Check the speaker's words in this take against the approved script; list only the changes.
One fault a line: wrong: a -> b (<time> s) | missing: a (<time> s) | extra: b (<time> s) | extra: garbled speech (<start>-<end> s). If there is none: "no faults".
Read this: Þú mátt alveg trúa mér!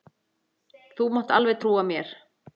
no faults